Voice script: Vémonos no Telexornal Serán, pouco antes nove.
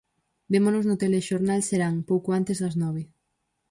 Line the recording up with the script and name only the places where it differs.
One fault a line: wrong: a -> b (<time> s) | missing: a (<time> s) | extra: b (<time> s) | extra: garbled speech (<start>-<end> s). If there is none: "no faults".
extra: das (2.6 s)